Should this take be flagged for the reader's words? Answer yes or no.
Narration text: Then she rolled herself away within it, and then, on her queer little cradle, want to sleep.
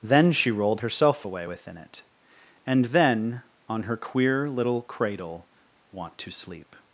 no